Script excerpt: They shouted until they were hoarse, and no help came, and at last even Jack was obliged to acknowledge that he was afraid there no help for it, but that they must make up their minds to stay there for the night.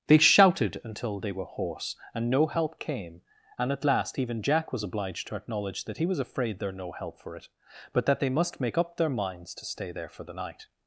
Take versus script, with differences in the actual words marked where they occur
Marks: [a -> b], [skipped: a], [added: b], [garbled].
They shouted until they were hoarse, and no help came, and at last even Jack was obliged to acknowledge that he was afraid there no help for it, but that they must make up their minds to stay there for the night.